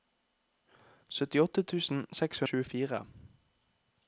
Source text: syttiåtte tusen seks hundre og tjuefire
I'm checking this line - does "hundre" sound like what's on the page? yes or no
no